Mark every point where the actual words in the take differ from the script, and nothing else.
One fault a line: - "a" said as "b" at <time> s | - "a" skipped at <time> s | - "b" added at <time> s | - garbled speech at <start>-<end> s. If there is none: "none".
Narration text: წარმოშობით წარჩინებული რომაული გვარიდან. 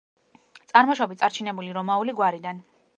none